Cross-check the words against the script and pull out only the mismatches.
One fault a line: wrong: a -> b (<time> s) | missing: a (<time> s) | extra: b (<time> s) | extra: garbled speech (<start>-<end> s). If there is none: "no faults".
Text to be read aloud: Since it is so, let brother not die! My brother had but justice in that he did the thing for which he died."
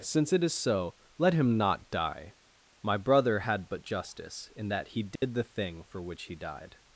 wrong: brother -> him (1.3 s)